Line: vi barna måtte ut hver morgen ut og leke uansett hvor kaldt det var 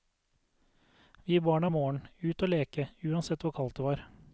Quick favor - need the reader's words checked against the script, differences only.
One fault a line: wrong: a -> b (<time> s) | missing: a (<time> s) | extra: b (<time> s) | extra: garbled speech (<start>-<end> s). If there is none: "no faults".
missing: måtte ut hver (1.7 s)